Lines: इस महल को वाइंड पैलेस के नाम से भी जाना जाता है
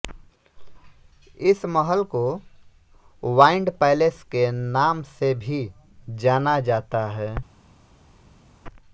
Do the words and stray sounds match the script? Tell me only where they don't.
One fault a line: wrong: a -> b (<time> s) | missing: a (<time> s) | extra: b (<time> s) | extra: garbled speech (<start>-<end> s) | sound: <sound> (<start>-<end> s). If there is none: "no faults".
no faults